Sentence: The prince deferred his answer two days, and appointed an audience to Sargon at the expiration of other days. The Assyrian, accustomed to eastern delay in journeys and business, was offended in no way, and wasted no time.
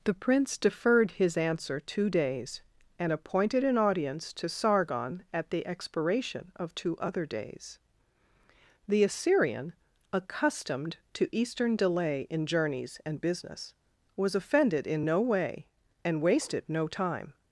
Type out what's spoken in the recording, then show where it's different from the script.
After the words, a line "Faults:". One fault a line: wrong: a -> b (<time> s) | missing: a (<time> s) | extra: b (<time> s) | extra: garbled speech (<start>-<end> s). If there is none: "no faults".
The prince deferred his answer two days, and appointed an audience to Sargon at the expiration of two other days. The Assyrian, accustomed to eastern delay in journeys and business, was offended in no way, and wasted no time.
Faults:
extra: two (6.7 s)